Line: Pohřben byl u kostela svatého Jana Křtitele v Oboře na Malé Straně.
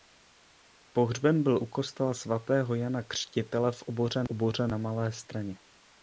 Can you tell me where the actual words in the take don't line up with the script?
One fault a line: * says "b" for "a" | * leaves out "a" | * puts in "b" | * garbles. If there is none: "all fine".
* puts in "Oboře"